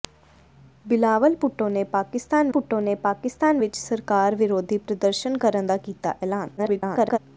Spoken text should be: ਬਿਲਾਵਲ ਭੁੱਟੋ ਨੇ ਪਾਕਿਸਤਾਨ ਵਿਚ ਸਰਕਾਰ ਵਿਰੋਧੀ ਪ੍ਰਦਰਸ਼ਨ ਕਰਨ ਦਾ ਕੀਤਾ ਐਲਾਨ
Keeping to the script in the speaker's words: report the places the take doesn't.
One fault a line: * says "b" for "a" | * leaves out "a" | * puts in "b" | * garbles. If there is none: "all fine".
* puts in "ਭੁੱਟੋ ਨੇ ਪਾਕਿਸਤਾਨ"
* garbles